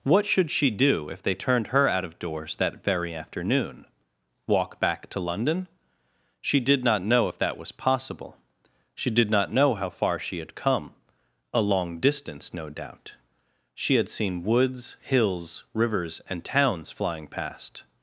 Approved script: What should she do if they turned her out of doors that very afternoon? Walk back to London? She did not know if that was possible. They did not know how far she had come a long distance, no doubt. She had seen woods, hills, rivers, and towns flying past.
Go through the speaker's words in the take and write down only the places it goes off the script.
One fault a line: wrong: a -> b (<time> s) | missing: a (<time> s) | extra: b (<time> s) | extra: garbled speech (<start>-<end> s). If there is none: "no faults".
wrong: They -> She (8.9 s)